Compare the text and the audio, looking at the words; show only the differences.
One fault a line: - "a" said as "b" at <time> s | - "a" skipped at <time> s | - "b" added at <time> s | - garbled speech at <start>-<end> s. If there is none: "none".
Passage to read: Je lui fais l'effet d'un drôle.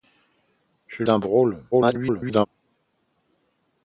- "lui fais l'effet" skipped at 1.0 s
- garbled speech at 1.7-2.5 s